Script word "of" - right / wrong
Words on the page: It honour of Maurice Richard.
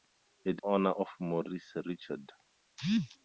right